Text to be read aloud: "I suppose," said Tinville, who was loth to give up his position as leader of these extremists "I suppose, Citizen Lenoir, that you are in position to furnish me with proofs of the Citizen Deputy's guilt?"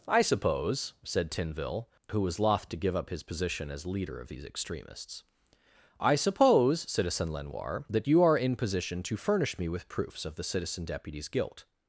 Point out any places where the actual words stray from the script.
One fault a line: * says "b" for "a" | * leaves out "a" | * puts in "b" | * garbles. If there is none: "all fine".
all fine